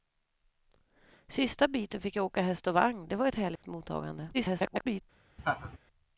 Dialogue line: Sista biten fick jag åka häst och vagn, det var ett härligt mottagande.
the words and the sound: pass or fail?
fail